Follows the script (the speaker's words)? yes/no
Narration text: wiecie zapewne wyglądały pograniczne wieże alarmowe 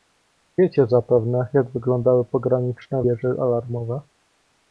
no